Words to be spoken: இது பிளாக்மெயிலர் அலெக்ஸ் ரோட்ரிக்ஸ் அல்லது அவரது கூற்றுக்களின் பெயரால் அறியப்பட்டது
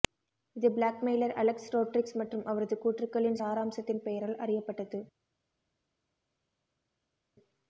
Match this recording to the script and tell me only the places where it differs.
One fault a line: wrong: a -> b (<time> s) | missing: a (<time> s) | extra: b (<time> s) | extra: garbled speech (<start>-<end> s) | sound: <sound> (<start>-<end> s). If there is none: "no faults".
wrong: அல்லது -> மற்றும் (2.2 s)
extra: சாராம்சத்தின் (3.4 s)